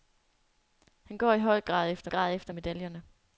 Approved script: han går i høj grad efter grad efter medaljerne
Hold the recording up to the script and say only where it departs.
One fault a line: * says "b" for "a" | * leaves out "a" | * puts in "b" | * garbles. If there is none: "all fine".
all fine